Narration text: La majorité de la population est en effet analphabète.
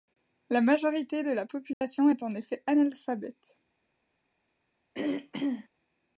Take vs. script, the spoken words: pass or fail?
pass